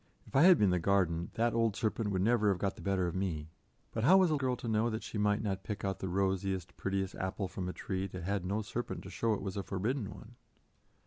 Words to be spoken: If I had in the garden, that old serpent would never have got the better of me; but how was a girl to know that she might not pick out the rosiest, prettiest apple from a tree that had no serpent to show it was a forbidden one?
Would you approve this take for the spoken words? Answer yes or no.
yes